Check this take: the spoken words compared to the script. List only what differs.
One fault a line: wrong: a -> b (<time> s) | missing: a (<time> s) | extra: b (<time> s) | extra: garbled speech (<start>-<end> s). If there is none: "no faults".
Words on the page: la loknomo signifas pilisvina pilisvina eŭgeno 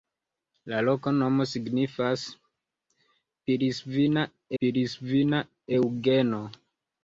no faults